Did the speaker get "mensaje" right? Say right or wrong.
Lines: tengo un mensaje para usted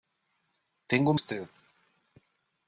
wrong